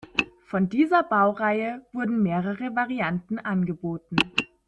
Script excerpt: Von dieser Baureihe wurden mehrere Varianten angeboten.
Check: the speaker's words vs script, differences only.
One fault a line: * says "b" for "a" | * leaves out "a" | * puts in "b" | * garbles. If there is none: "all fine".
all fine